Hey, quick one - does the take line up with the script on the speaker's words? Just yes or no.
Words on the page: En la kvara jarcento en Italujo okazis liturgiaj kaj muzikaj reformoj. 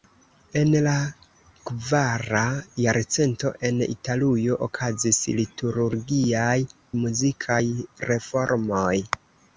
no